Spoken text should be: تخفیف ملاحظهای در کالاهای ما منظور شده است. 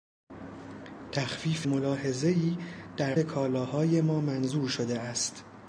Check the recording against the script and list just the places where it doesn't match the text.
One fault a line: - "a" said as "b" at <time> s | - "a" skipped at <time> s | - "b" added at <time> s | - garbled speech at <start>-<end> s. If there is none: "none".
none